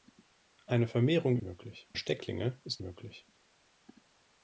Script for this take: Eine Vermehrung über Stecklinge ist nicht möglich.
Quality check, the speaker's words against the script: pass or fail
fail